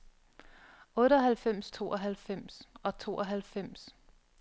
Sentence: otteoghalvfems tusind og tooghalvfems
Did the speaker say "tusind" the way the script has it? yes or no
no